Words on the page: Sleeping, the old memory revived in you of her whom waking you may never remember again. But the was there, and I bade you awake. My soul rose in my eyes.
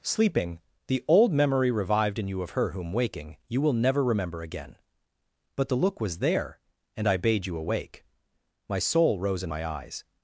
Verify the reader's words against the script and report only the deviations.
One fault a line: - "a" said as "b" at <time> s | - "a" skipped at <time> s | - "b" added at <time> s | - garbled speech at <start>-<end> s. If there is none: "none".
- "may" said as "will" at 3.6 s
- "look" added at 5.8 s